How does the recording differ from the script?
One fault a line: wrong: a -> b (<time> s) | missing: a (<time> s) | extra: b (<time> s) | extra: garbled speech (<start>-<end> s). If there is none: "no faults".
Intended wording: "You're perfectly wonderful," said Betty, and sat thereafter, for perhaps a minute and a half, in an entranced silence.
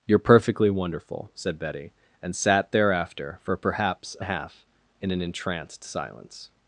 missing: minute and (4.2 s)